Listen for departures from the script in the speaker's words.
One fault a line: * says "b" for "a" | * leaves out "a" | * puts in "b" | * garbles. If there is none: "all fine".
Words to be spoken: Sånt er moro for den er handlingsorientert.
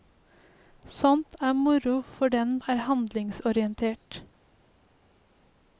all fine